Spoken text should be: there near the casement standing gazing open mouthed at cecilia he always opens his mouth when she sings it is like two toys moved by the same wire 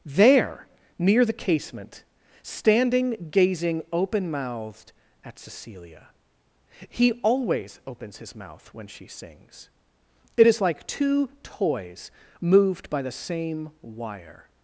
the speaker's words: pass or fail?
pass